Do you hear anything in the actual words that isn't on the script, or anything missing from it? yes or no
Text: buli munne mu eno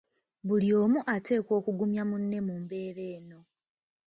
yes